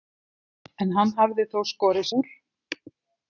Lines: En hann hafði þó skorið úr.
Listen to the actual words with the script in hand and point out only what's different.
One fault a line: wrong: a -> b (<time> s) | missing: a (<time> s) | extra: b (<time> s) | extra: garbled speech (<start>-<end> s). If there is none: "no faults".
no faults